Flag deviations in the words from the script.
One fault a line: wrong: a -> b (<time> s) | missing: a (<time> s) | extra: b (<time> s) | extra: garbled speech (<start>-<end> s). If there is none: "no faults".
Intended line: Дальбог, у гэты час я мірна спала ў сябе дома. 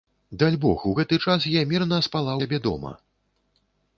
missing: ў (2.3 s)